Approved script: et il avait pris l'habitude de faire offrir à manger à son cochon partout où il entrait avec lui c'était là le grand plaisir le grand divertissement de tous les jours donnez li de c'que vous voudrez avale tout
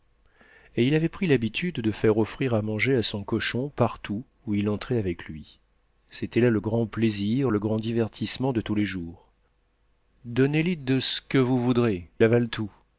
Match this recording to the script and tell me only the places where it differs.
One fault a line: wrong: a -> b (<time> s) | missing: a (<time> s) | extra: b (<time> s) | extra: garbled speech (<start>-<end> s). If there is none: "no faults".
no faults